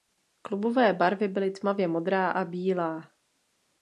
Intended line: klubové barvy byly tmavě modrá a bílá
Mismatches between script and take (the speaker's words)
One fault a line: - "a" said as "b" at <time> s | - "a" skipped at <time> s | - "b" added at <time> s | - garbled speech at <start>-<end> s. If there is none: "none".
none